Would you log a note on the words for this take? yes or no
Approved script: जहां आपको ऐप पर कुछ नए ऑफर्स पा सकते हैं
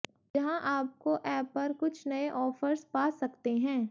no